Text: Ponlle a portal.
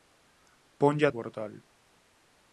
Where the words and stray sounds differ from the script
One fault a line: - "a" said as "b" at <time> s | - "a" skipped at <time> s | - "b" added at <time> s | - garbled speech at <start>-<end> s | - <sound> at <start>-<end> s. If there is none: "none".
none